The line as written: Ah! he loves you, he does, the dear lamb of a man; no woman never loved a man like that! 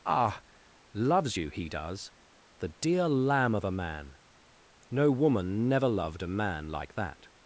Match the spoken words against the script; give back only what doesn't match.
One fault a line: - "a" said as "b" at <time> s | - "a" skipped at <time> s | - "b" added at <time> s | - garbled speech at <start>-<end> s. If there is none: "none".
- "he" skipped at 0.4 s